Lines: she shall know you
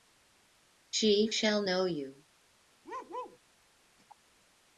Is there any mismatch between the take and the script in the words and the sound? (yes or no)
yes